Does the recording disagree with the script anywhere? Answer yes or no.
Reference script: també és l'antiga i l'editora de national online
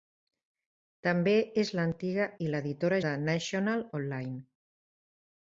no